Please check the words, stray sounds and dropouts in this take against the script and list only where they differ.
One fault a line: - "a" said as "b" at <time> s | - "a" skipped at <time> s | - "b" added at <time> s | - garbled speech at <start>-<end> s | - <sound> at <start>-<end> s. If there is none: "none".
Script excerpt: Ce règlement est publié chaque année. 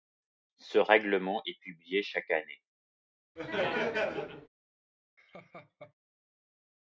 - laugh at 3.4-4.5 s
- laugh at 5.2-5.9 s